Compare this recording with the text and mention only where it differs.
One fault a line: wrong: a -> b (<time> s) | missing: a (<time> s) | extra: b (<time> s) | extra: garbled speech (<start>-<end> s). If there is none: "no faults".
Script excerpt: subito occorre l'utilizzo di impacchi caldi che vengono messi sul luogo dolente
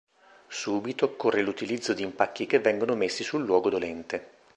missing: caldi (2.5 s)